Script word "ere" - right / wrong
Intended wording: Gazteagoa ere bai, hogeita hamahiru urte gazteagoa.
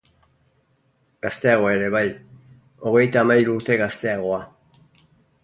right